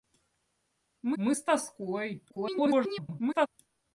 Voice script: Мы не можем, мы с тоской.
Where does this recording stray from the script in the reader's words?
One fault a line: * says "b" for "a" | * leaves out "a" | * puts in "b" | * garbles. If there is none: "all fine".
* leaves out "не можем"
* garbles